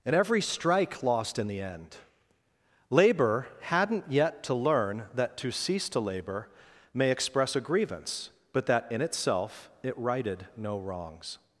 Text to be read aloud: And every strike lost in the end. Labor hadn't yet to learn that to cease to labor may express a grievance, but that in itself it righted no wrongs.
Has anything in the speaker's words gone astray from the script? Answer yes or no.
no